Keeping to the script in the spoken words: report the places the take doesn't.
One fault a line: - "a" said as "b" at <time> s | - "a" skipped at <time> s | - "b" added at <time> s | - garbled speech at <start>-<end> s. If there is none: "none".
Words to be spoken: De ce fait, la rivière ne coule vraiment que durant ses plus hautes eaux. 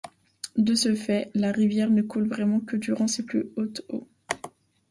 none